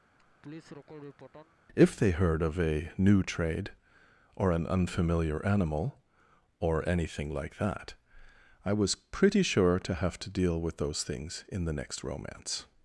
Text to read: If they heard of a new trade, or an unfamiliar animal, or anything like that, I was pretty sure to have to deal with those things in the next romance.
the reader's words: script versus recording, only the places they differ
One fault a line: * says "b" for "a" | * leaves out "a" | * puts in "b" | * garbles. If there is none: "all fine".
all fine